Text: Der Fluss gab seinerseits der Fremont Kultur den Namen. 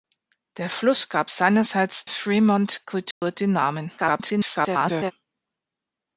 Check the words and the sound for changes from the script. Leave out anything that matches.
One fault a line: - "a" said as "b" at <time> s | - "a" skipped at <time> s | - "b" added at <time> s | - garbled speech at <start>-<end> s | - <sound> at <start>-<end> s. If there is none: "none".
- "der" skipped at 2.1 s
- dropout at 3.1-3.2 s
- garbled speech at 4.0-5.1 s